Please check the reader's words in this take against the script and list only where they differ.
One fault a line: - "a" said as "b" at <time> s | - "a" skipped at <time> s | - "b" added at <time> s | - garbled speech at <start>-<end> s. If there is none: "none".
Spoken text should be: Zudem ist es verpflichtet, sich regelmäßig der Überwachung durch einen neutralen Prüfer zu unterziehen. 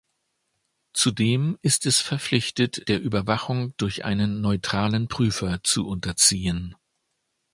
- "sich regelmäßig" skipped at 2.8 s